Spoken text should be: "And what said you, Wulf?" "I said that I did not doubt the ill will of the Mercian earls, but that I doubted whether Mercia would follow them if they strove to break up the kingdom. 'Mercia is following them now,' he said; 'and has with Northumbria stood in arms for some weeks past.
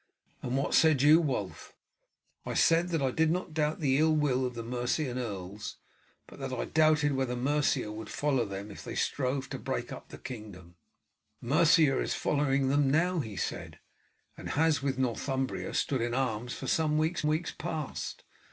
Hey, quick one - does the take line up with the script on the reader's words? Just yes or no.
no